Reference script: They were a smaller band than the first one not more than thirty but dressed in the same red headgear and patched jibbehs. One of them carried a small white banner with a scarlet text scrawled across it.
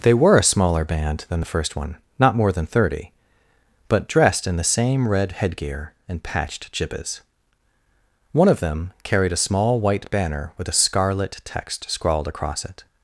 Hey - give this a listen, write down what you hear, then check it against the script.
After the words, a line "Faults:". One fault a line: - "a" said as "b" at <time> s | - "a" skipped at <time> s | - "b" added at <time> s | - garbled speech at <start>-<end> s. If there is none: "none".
They were a smaller band than the first one not more than thirty but dressed in the same red headgear and patched jibbehs. One of them carried a small white banner with a scarlet text scrawled across it.
Faults:
none